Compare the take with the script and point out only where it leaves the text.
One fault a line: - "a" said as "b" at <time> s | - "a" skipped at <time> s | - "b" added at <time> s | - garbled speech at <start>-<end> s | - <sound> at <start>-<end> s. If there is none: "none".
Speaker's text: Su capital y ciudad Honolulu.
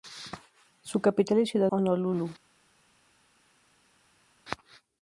none